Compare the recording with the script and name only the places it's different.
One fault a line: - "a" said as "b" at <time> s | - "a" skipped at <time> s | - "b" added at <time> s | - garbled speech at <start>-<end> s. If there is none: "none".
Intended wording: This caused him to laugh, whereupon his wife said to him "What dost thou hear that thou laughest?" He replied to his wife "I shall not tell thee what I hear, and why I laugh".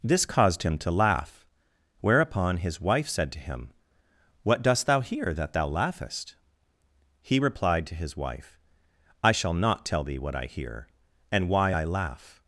none